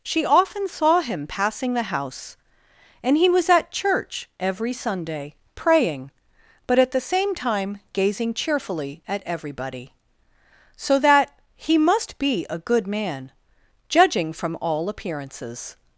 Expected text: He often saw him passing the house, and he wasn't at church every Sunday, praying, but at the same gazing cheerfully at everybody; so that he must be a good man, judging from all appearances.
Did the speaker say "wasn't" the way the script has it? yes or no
no